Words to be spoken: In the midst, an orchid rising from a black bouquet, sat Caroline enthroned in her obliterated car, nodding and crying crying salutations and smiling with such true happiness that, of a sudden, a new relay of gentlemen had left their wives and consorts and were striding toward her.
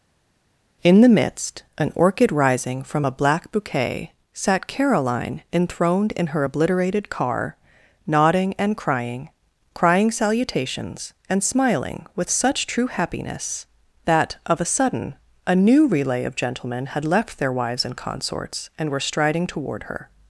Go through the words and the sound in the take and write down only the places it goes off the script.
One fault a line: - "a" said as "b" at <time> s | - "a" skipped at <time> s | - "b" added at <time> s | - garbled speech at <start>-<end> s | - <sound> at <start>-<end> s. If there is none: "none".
none